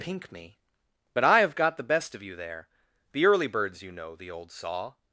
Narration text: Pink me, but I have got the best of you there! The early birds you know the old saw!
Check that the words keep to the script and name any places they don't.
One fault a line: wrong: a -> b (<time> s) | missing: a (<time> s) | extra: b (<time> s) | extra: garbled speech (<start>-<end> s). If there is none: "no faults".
no faults